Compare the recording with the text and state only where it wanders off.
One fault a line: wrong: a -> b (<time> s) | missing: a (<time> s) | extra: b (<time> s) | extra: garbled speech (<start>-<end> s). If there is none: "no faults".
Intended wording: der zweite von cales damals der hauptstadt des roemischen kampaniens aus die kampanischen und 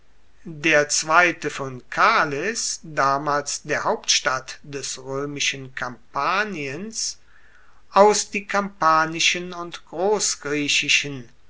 no faults